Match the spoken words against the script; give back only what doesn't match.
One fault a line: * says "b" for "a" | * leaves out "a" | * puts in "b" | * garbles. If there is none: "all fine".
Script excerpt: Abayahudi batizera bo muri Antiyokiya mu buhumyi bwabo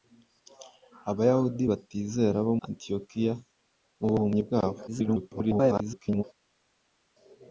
* leaves out "muri"
* garbles